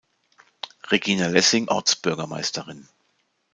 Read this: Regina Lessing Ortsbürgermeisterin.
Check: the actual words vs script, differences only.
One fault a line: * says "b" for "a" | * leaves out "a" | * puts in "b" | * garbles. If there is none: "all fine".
all fine